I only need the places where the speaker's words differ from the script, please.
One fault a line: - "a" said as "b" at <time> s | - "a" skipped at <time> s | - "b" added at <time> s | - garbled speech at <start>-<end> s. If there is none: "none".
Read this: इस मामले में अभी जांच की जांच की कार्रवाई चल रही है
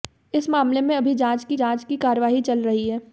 none